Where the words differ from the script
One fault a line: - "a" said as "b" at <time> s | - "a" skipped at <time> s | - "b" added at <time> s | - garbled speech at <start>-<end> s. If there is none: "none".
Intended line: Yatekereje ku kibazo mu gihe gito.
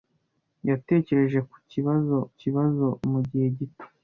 - "kibazo" added at 2.4 s